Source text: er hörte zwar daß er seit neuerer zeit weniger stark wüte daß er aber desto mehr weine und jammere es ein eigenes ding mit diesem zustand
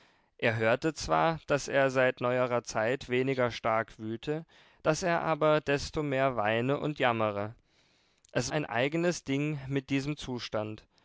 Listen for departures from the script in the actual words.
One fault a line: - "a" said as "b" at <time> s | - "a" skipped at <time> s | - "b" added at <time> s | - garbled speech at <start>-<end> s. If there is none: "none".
none